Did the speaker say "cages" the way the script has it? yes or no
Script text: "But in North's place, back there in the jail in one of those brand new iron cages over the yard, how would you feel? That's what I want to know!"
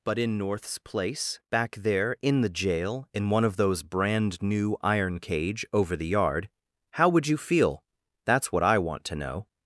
no